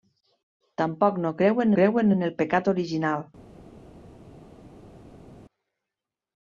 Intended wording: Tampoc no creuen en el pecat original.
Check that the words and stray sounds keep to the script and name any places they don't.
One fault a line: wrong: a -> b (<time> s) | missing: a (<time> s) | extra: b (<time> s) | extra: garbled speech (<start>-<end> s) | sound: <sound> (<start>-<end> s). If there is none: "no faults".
extra: creuen (1.8 s)